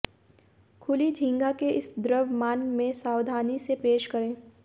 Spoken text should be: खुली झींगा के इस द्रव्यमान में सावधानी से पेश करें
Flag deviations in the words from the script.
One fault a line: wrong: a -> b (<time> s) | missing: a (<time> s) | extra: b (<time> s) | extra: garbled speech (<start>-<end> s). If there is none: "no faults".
no faults